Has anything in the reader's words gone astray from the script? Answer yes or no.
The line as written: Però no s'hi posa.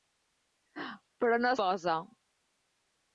yes